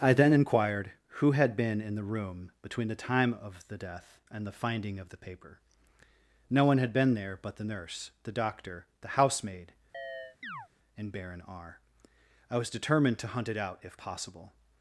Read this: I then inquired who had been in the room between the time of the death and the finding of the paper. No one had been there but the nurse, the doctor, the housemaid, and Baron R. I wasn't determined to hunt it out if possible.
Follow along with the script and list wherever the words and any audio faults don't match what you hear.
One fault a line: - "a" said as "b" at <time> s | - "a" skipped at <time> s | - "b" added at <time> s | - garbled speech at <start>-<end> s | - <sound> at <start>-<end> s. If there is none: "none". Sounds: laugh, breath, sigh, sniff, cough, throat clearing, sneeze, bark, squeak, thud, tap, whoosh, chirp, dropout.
- chirp at 9.9-10.7 s
- "wasn't" said as "was" at 12.6 s